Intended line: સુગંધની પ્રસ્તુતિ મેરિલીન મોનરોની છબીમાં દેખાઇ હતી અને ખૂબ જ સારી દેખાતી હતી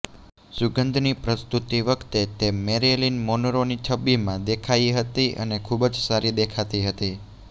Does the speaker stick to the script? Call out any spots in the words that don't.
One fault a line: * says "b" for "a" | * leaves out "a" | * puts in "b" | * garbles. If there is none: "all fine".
* puts in "વખતે તે"